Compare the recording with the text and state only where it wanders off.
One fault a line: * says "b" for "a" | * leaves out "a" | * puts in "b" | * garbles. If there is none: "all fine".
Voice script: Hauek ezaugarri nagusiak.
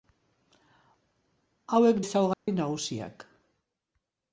all fine